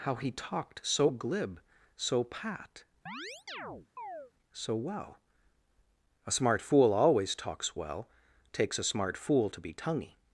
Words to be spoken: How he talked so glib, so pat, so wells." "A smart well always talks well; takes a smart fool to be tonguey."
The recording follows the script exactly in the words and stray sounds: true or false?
false